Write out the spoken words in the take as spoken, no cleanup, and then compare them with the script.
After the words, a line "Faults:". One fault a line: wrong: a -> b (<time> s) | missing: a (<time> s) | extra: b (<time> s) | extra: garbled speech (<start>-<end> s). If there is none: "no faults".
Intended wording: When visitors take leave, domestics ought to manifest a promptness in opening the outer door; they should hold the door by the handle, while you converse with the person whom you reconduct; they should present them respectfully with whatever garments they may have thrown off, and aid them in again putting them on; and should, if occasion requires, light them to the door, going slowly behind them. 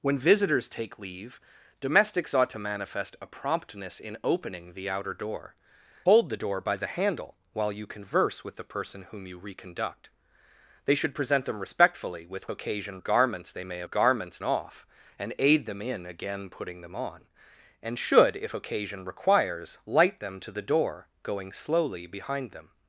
When visitors take leave, domestics ought to manifest a promptness in opening the outer door; hold the door by the handle, while you converse with the person whom you reconduct; they should present them respectfully with occasion garments they may have garments off, and aid them in again putting them on; and should, if occasion requires, light them to the door, going slowly behind them.
Faults:
missing: they should (5.5 s)
wrong: whatever -> occasion (12.5 s)
wrong: thrown -> garments (13.8 s)